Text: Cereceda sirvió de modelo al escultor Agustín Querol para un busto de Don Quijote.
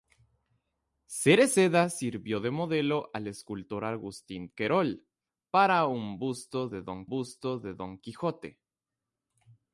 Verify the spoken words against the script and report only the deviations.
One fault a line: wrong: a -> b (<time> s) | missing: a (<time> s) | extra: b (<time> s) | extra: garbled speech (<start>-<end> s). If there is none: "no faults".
extra: busto de Don (7.1 s)